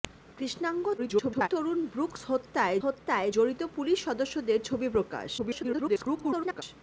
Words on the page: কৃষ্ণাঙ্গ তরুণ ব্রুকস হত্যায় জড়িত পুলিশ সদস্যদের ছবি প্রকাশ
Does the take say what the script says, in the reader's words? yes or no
no